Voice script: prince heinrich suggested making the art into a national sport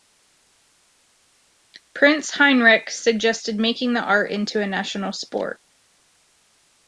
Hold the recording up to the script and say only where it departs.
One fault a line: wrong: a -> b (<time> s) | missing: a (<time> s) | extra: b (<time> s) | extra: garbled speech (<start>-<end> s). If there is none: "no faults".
no faults